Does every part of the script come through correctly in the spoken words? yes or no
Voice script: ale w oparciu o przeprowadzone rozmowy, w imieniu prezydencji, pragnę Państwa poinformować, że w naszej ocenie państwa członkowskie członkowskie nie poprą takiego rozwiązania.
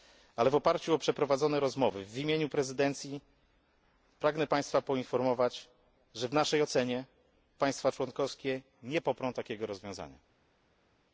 no